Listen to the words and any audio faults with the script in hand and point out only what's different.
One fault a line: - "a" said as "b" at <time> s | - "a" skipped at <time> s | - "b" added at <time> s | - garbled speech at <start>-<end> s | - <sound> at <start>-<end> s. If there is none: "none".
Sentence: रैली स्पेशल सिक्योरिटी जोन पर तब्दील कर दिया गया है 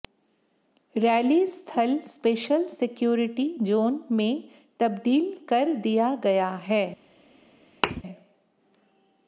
- "स्थल" added at 1.5 s
- "पर" said as "में" at 4.1 s
- thud at 7.8-8.0 s